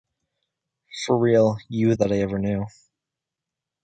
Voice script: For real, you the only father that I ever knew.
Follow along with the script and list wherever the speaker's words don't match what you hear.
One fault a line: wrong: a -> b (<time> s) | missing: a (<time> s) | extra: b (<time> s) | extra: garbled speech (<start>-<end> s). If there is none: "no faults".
missing: the only father (1.9 s)